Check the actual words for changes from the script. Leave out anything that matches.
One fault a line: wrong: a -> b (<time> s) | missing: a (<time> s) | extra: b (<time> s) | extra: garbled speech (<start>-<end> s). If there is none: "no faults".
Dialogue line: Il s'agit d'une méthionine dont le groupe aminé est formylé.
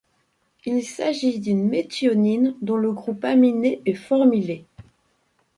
no faults